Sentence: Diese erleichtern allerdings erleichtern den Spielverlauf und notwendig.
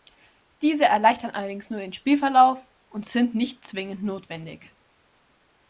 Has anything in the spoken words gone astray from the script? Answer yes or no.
yes